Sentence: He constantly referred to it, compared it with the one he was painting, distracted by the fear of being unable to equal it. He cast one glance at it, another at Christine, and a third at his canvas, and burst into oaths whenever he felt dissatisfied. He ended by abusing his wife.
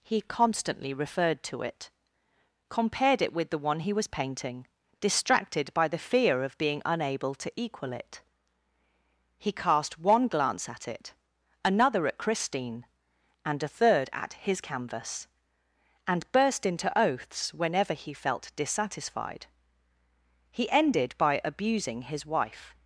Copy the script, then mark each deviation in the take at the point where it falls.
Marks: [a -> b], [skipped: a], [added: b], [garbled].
He constantly referred to it, compared it with the one he was painting, distracted by the fear of being unable to equal it. He cast one glance at it, another at Christine, and a third at his canvas, and burst into oaths whenever he felt dissatisfied. He ended by abusing his wife.